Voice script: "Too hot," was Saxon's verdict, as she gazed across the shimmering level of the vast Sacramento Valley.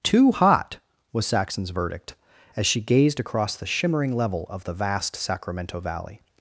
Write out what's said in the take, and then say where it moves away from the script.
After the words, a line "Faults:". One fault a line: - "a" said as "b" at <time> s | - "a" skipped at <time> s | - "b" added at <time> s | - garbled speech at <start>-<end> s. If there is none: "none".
"Too hot," was Saxon's verdict, as she gazed across the shimmering level of the vast Sacramento Valley.
Faults:
none